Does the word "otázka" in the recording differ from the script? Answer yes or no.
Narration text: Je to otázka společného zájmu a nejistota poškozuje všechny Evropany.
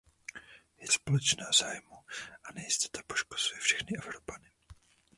yes